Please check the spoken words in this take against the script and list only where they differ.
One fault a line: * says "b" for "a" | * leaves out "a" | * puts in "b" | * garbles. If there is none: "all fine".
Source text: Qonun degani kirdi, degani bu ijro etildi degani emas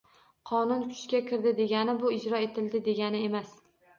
* says "kuchga" for "degani"